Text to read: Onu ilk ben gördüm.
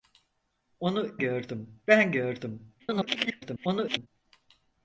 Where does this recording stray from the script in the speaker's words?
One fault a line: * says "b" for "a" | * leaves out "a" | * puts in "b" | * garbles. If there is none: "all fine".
* says "gördüm" for "ilk"
* garbles